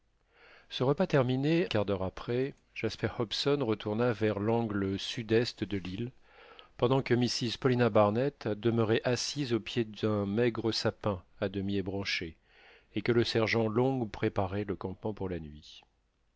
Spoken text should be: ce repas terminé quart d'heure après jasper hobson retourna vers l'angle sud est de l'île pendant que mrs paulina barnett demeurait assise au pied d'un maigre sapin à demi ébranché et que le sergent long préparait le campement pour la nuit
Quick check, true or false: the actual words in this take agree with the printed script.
true